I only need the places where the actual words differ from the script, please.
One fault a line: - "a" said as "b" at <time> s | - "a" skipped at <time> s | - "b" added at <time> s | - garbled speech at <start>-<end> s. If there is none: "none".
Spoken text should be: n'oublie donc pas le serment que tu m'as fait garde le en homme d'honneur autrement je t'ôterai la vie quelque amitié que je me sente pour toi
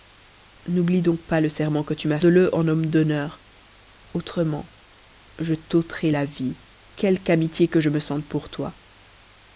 - "fait garde" skipped at 2.2 s